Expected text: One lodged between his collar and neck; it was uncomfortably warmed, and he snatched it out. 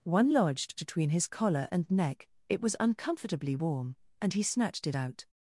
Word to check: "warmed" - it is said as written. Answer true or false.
false